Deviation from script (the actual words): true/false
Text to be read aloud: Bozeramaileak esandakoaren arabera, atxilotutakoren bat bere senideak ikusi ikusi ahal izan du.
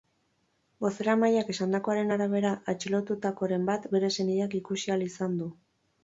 true